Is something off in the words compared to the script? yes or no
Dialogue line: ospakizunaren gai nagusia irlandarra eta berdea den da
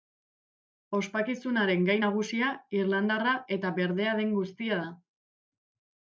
yes